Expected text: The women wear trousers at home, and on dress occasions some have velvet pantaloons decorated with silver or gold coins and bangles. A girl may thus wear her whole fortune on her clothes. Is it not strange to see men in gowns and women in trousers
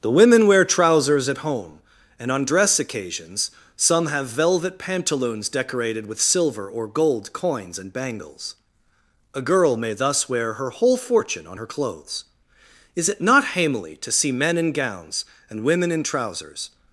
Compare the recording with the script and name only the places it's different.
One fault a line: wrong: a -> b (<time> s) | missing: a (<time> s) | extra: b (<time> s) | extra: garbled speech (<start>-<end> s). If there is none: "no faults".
wrong: strange -> hamely (13.6 s)